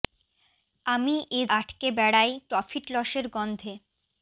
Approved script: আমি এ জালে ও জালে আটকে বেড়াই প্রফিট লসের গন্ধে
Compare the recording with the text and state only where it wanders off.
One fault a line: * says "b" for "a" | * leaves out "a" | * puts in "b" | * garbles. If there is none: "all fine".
* leaves out "জালে ও জালে"